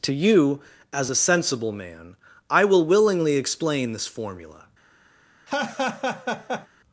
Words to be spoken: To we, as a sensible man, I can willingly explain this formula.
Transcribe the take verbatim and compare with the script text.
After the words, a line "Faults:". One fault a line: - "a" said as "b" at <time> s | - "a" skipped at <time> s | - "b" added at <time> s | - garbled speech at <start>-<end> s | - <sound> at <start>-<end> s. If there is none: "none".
To you, as a sensible man, I will willingly explain this formula.
Faults:
- "we" said as "you" at 0.1 s
- "can" said as "will" at 2.6 s
- laugh at 5.5-6.7 s